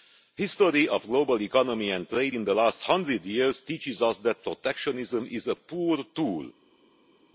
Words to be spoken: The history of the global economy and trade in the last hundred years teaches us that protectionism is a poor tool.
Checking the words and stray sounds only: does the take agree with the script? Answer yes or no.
yes